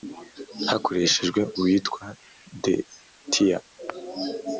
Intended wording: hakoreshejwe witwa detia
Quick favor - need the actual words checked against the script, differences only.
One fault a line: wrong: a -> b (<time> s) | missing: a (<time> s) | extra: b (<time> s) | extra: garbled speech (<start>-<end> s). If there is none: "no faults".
no faults